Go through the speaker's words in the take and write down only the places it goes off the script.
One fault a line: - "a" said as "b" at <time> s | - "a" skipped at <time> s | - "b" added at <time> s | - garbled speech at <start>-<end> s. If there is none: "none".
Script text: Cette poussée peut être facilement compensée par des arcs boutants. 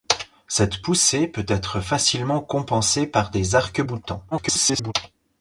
- garbled speech at 4.3-4.9 s